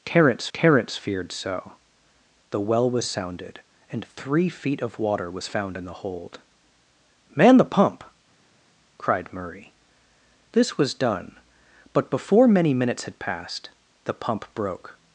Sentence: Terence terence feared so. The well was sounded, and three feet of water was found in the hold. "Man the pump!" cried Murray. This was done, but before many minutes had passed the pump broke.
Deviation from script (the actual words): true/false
false